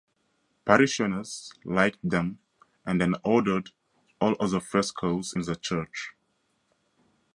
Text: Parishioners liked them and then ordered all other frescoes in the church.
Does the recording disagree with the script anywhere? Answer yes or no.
no